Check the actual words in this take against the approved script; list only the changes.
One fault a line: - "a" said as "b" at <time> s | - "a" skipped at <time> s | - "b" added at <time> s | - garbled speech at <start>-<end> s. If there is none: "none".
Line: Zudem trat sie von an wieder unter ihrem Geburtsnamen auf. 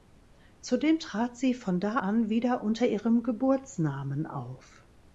- "da" added at 1.8 s